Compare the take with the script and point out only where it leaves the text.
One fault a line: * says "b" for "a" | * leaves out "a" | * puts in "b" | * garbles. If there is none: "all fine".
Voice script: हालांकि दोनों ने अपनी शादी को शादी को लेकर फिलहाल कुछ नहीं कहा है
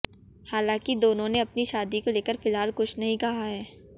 * leaves out "शादी को"